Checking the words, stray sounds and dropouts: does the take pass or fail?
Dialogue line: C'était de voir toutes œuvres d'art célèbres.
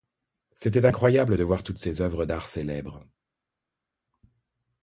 fail